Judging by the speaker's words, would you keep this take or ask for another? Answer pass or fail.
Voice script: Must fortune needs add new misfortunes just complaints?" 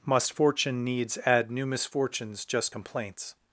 pass